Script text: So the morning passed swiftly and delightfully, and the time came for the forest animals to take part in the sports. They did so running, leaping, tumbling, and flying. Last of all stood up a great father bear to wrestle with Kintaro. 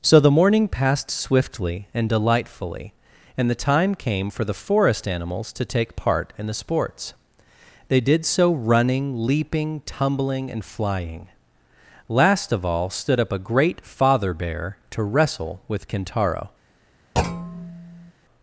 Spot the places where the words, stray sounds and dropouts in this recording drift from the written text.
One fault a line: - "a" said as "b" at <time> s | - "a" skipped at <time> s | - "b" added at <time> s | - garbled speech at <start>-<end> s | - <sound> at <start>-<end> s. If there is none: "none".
- thud at 17.2-18.1 s